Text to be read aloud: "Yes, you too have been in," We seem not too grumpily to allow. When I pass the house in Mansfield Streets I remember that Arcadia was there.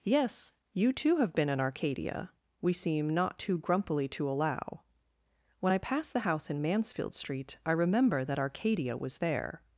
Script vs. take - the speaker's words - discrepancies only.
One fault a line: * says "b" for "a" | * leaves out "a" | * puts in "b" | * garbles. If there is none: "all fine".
* puts in "Arcadia"
* says "Street" for "Streets"